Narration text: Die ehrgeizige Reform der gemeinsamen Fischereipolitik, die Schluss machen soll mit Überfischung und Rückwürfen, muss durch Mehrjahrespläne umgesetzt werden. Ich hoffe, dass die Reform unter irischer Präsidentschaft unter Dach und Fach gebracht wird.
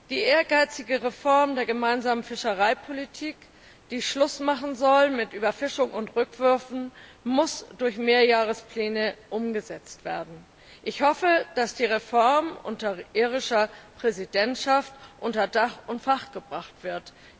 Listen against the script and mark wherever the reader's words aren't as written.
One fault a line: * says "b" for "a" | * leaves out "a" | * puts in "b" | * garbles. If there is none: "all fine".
all fine